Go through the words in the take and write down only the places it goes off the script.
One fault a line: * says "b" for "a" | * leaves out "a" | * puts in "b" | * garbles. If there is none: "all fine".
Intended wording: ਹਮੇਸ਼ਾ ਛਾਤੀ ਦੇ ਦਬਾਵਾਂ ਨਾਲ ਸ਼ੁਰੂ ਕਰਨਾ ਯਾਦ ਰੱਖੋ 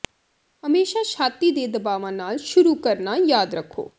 all fine